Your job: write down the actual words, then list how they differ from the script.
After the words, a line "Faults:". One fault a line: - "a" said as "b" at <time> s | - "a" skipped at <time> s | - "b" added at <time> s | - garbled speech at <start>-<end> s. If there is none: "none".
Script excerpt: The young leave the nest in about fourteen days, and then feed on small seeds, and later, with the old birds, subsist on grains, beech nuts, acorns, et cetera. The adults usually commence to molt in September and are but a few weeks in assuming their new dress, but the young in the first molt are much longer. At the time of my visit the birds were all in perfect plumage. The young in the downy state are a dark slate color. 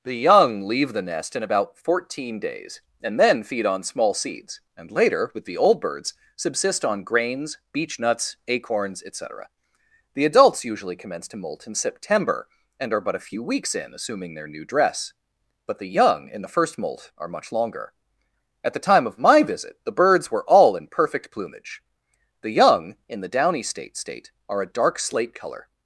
The young leave the nest in about fourteen days, and then feed on small seeds, and later, with the old birds, subsist on grains, beech nuts, acorns, et cetera. The adults usually commence to molt in September and are but a few weeks in assuming their new dress, but the young in the first molt are much longer. At the time of my visit the birds were all in perfect plumage. The young in the downy state state are a dark slate color.
Faults:
- "state" added at 23.9 s